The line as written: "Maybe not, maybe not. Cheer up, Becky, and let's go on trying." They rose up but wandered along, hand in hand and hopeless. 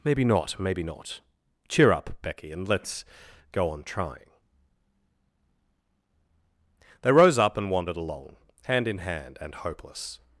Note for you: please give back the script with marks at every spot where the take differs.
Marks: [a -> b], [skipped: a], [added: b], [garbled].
"Maybe not, maybe not. Cheer up, Becky, and let's go on trying." They rose up [but -> and] wandered along, hand in hand and hopeless.